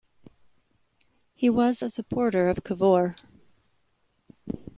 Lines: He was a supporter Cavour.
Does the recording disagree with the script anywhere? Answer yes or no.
yes